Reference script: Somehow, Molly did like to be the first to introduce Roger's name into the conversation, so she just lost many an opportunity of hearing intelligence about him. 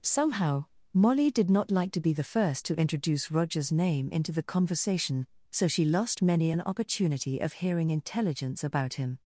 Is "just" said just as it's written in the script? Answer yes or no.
no